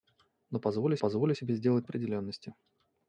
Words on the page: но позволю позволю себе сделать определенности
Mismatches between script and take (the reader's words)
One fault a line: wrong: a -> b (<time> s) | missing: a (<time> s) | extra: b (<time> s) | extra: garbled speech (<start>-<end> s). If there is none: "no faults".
no faults